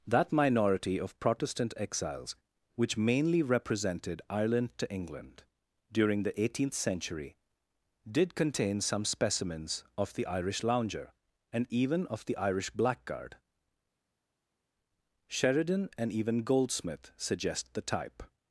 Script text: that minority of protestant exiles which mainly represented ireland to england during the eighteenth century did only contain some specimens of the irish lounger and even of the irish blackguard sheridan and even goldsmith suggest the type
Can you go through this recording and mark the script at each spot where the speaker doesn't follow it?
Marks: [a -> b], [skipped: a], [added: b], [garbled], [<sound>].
that minority of protestant exiles which mainly represented ireland to england during the eighteenth century did [skipped: only] contain some specimens of the irish lounger and even of the irish blackguard sheridan and even goldsmith suggest the type